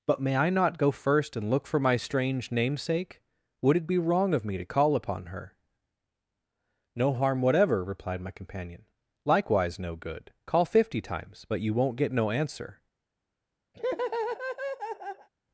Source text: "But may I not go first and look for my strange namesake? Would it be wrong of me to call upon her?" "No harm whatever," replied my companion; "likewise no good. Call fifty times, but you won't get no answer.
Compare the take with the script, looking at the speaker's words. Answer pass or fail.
pass